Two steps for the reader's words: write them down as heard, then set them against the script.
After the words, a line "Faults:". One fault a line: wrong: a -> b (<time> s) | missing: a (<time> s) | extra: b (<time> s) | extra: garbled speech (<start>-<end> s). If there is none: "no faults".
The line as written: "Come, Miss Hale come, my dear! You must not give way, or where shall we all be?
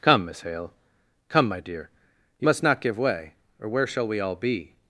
"Come, Miss Hale come, my dear! You must not give way, or where shall we all be?
Faults:
no faults